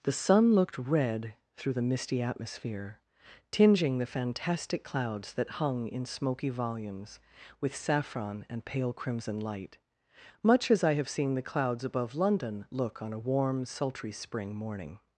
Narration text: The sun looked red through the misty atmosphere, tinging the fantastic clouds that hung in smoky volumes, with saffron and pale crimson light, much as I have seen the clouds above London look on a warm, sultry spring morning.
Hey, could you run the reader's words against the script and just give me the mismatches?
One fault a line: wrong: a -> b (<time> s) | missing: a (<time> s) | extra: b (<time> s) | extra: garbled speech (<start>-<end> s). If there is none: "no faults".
no faults